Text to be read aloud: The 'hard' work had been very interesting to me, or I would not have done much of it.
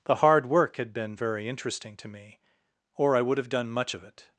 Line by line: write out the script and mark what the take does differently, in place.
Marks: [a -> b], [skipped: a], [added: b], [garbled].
The 'hard' work had been very interesting to me, or I would [skipped: not] have done much of it.